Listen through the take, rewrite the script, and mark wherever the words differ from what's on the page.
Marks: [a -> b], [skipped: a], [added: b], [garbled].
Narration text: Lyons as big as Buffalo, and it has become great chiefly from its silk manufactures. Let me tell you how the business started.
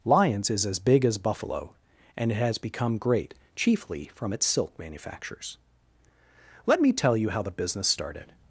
Lyons [added: is] as big as Buffalo, and it has become great chiefly from its silk manufactures. Let me tell you how the business started.